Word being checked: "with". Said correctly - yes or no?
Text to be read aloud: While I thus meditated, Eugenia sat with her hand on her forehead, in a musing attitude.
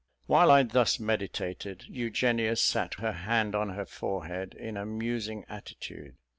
no